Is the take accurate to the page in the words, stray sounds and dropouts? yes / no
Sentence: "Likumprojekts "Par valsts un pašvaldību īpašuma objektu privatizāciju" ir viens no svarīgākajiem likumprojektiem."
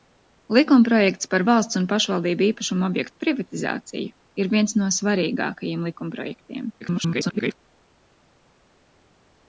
no